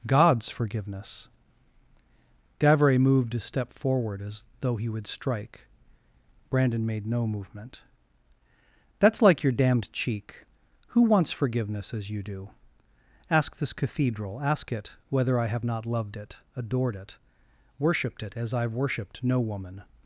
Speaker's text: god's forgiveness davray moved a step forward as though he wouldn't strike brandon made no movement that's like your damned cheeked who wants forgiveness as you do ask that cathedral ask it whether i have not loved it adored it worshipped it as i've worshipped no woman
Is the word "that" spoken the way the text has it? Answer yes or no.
no